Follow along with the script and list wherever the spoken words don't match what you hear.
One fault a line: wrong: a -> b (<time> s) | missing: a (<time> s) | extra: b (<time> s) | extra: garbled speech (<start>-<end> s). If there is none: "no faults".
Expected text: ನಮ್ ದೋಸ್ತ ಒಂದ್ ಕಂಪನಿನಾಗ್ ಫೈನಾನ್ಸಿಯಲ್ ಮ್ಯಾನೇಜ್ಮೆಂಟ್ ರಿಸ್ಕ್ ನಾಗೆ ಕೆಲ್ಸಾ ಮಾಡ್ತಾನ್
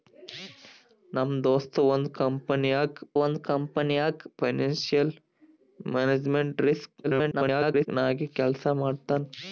extra: ಒಂದ್ ಕಂಪನಿನಾಗ್ (3.2 s)
extra: garbled speech (7.0-7.9 s)